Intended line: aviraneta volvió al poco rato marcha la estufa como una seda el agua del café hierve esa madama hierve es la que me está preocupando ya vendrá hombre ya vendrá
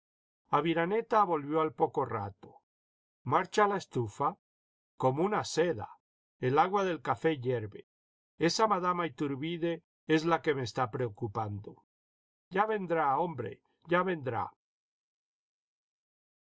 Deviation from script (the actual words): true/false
true